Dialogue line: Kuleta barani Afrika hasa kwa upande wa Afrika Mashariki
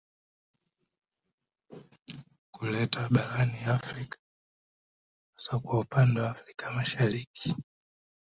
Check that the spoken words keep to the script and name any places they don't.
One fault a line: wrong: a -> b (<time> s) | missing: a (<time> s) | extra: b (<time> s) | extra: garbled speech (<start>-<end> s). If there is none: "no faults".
no faults